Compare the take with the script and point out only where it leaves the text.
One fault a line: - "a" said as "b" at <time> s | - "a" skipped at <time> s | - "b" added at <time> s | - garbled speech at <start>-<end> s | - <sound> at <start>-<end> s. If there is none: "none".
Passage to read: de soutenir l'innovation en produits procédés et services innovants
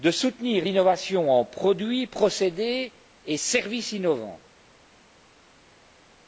none